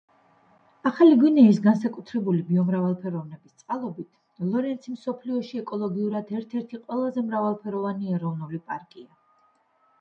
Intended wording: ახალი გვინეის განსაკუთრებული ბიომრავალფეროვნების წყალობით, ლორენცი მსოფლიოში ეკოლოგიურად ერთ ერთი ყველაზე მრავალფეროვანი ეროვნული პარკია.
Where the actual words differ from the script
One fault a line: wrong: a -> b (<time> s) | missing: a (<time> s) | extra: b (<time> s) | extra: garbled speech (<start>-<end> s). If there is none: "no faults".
no faults